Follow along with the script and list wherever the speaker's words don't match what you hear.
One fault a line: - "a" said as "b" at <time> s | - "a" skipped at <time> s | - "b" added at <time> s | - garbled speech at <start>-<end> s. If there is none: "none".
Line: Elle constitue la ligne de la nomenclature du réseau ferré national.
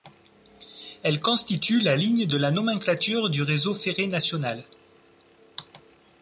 none